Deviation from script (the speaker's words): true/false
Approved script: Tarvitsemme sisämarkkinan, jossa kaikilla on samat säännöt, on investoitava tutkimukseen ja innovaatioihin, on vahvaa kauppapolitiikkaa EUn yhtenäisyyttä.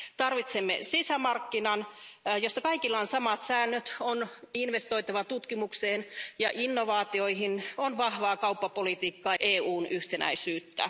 false